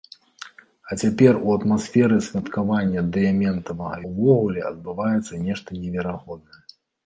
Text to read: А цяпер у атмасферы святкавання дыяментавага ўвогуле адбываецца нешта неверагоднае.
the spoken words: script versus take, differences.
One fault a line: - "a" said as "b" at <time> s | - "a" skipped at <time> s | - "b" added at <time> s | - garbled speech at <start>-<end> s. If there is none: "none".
none